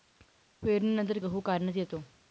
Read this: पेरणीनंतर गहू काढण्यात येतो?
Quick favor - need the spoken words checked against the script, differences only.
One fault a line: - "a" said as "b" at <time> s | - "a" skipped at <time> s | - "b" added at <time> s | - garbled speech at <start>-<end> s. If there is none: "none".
none